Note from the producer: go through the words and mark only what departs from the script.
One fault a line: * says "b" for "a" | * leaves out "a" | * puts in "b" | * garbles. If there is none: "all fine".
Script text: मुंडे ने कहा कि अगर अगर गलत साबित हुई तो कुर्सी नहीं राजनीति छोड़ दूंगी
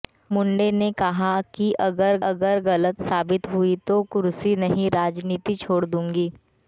all fine